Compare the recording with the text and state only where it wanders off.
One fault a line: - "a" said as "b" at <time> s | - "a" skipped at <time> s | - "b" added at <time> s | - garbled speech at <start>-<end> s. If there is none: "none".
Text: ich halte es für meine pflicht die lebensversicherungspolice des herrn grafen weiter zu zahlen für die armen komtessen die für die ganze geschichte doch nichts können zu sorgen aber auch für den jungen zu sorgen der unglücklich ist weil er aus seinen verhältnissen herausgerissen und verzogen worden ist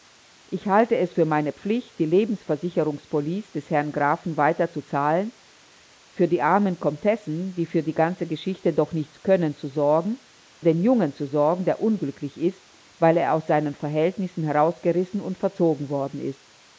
- "aber auch für" skipped at 10.2 s